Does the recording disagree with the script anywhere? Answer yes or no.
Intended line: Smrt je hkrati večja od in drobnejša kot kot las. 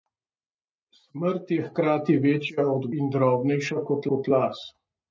no